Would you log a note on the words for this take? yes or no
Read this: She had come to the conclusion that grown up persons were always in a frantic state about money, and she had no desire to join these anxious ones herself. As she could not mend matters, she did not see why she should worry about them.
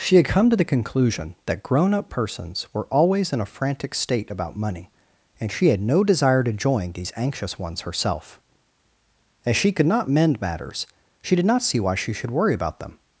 no